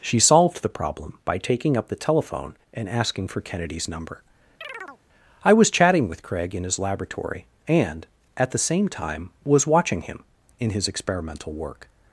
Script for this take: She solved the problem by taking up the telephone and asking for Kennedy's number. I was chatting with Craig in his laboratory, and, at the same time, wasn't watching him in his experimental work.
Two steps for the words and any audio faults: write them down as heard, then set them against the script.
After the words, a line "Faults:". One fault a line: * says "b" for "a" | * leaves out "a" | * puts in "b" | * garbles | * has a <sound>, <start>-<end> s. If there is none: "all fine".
She solved the problem by taking up the telephone and asking for Kennedy's number. I was chatting with Craig in his laboratory, and, at the same time, was watching him in his experimental work.
Faults:
* has a chirp, 4.6-5.0 s
* says "was" for "wasn't"